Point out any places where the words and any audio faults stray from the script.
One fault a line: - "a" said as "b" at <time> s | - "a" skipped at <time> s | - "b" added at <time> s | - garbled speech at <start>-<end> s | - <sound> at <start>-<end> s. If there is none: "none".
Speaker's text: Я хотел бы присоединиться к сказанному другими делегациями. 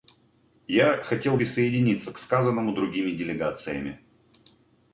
- "бы" skipped at 1.4 s